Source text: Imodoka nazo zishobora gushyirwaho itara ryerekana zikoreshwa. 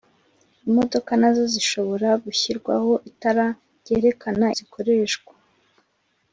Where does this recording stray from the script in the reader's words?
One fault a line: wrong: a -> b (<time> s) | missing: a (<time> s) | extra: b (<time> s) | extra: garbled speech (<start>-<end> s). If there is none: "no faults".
no faults